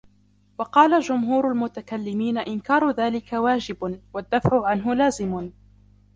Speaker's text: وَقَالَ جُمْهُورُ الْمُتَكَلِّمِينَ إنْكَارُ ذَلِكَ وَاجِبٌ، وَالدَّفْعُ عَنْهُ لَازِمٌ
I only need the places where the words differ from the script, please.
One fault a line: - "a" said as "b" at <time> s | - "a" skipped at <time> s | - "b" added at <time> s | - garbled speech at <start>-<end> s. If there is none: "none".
none